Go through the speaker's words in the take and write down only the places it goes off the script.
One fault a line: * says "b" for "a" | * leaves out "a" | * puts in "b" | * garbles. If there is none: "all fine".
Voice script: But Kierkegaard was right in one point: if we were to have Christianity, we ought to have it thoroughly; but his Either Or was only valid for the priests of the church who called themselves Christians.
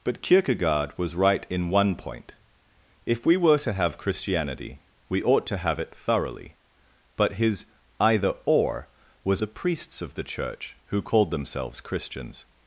* leaves out "only valid for"